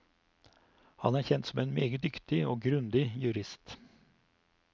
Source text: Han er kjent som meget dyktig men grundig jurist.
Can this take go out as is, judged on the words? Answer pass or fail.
fail